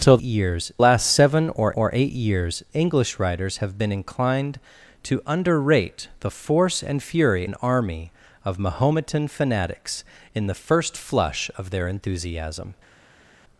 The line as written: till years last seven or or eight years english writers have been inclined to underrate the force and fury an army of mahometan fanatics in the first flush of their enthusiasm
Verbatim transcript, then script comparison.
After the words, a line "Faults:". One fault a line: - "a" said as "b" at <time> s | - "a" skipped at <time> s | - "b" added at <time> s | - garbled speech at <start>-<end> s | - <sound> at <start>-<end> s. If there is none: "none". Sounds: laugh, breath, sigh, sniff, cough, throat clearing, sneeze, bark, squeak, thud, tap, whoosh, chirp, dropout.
till years last seven or or eight years english writers have been inclined to underrate the force and fury an army of mahometan fanatics in the first flush of their enthusiasm
Faults:
none